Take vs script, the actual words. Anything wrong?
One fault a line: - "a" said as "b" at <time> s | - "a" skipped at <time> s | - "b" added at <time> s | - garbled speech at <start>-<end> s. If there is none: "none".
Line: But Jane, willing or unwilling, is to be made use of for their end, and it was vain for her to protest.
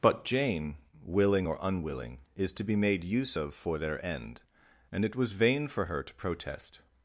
none